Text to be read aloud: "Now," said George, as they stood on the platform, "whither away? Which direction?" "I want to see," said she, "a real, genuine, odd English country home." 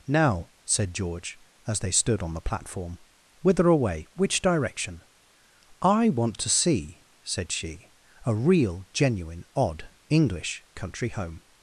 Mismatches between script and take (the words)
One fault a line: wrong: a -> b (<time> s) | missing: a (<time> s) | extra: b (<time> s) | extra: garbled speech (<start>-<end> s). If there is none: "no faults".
no faults